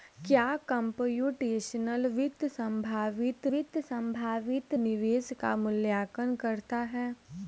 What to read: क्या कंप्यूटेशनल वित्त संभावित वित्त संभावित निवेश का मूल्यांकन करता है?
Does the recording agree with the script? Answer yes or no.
yes